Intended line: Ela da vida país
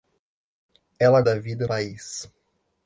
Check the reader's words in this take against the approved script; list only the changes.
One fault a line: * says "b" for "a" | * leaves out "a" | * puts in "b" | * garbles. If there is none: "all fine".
all fine